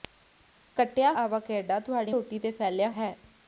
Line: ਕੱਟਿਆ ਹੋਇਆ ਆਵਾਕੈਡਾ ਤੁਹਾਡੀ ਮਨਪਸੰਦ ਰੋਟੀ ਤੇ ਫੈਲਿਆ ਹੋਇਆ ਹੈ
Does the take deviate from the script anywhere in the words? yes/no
yes